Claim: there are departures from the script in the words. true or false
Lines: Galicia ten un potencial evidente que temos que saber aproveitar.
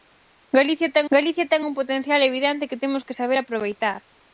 true